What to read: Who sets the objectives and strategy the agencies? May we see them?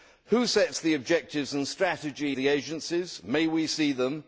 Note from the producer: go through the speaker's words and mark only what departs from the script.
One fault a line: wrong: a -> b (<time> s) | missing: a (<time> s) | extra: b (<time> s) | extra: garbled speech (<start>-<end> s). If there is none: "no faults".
no faults